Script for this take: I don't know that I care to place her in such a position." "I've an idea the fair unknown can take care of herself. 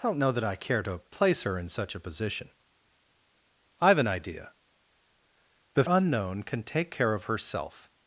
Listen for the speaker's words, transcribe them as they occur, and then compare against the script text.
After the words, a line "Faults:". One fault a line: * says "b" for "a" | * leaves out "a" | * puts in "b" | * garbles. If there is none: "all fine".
I don't know that I care to place her in such a position." "I've an idea the unknown can take care of herself.
Faults:
* leaves out "fair"